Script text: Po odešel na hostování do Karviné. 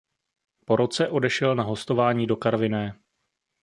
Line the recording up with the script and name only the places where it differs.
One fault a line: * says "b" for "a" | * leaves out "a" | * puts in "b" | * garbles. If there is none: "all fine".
* puts in "roce"